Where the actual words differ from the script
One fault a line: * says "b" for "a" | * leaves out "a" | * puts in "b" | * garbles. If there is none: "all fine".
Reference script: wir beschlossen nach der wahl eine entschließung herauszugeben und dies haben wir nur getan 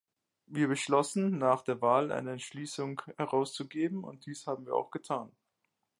* says "auch" for "nur"